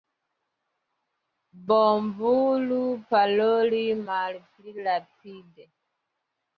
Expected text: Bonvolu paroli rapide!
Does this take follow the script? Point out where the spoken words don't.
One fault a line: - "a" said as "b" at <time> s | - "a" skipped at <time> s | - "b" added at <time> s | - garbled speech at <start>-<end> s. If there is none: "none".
- "malpli" added at 4.1 s